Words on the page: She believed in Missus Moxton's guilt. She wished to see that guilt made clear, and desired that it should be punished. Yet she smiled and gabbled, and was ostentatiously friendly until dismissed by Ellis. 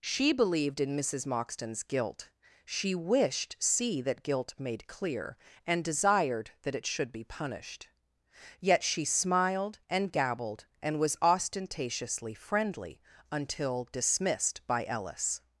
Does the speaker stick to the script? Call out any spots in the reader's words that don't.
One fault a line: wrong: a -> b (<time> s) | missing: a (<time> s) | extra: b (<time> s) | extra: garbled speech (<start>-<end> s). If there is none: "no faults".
missing: to (3.5 s)